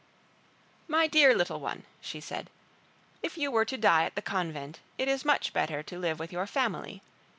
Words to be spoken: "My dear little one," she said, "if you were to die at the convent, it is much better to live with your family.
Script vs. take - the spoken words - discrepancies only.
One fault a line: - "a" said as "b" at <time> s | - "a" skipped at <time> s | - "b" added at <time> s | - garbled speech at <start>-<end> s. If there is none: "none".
none